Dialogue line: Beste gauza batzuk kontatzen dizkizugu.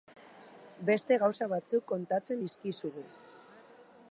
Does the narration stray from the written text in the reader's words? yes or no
no